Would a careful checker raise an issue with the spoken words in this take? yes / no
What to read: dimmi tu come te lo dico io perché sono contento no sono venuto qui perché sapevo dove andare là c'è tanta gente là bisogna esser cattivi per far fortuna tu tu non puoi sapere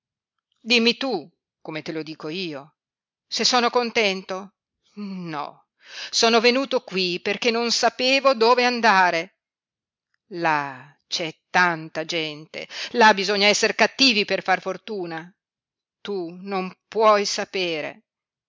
yes